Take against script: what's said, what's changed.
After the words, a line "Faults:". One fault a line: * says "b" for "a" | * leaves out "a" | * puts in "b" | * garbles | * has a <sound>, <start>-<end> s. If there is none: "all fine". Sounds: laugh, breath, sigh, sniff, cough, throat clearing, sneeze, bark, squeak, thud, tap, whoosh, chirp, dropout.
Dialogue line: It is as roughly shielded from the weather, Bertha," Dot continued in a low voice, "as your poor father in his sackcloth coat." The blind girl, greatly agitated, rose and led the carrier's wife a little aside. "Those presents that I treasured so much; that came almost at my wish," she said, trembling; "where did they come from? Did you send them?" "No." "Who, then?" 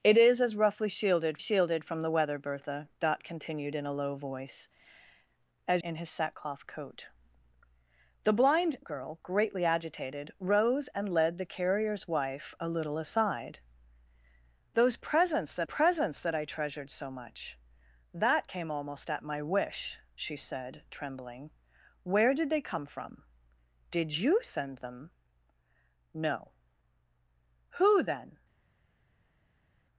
It is as roughly shielded shielded from the weather, Bertha," Dot continued in a low voice, "as in his sackcloth coat." The blind girl, greatly agitated, rose and led the carrier's wife a little aside. "Those presents that presents that I treasured so much; that came almost at my wish," she said, trembling; "where did they come from? Did you send them?" "No." "Who, then?"
Faults:
* puts in "shielded"
* leaves out "your poor father"
* puts in "presents that"